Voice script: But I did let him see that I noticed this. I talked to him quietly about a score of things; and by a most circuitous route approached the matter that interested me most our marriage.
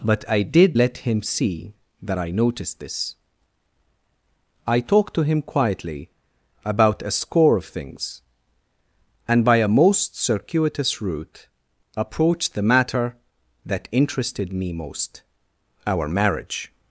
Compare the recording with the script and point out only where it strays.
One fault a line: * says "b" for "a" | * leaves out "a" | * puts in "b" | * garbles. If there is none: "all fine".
all fine